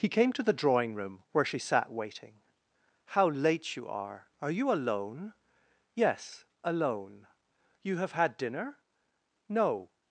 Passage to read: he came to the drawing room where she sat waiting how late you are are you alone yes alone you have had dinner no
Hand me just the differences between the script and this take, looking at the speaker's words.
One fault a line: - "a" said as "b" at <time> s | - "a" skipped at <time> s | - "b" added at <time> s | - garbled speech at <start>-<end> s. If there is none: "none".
none